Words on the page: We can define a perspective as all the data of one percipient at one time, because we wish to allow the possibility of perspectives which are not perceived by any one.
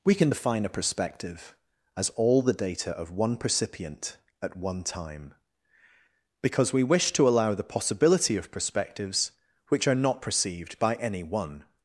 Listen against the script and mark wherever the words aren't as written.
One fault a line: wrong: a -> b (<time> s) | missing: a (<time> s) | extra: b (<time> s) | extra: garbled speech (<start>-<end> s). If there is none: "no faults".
no faults